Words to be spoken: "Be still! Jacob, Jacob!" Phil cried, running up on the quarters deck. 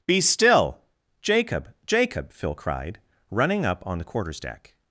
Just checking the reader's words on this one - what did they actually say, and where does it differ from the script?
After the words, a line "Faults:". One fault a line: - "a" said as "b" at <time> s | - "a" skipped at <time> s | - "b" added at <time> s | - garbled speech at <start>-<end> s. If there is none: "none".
"Be still! Jacob, Jacob!" Phil cried, running up on the quarters deck.
Faults:
none